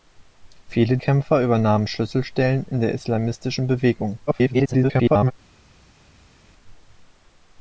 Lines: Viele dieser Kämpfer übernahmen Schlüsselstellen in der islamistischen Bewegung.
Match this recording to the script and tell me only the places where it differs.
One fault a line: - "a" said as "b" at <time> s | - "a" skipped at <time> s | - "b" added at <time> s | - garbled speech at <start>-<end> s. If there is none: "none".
- "dieser" skipped at 1.0 s
- garbled speech at 4.3-5.3 s